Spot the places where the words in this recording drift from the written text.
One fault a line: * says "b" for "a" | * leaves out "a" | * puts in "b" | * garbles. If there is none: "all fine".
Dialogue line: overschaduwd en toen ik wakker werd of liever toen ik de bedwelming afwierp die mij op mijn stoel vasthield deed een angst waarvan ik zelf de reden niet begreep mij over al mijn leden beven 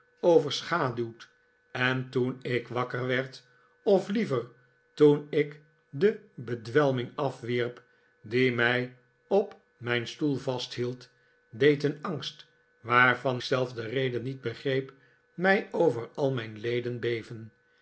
* leaves out "ik"